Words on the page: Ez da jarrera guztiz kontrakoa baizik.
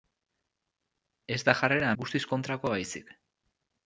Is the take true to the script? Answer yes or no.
yes